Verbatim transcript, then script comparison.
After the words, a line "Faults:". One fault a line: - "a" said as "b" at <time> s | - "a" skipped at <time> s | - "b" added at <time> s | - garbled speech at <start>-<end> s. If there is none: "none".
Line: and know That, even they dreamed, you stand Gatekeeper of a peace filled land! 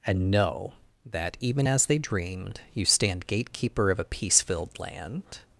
and know That, even as they dreamed, you stand Gatekeeper of a peace filled land!
Faults:
- "as" added at 1.7 s